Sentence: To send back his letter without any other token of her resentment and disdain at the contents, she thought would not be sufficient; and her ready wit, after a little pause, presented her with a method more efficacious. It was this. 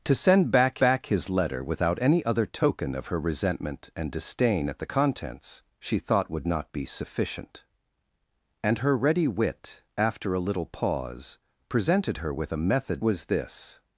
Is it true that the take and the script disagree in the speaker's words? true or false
true